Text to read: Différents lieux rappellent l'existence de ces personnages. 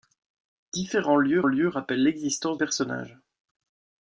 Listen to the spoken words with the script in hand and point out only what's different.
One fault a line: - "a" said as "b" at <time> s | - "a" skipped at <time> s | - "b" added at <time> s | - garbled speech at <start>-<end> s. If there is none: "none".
- "lieux" added at 1.4 s
- "de ces" skipped at 2.6 s